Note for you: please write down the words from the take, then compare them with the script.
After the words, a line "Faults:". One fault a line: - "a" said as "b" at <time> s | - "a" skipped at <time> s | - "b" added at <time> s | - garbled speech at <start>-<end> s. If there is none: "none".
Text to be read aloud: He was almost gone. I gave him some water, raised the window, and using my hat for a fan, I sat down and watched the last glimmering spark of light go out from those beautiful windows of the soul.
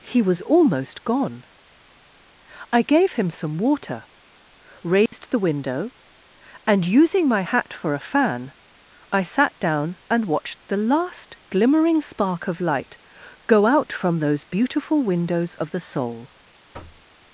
He was almost gone. I gave him some water, raised the window, and using my hat for a fan, I sat down and watched the last glimmering spark of light go out from those beautiful windows of the soul.
Faults:
none